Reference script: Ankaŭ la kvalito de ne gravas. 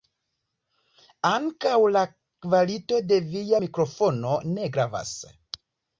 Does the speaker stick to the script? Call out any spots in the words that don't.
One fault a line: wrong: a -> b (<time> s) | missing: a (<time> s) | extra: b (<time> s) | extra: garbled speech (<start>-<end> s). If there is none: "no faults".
extra: via mikrofono (3.3 s)